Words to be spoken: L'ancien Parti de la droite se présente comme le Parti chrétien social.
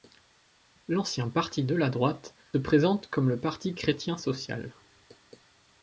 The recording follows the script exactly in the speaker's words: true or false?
false